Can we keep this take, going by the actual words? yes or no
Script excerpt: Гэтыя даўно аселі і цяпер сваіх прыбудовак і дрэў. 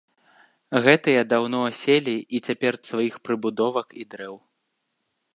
yes